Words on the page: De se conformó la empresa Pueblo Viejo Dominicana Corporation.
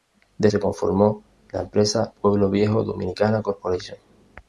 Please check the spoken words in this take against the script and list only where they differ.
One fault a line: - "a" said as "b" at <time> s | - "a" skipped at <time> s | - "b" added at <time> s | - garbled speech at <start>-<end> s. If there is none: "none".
none